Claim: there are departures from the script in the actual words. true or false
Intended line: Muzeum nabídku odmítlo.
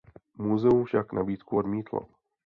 true